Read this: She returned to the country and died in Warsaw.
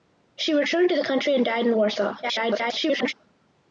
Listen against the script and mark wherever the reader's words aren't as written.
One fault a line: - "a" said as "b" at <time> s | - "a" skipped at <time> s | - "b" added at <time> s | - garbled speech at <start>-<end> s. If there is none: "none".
- garbled speech at 2.2-3.1 s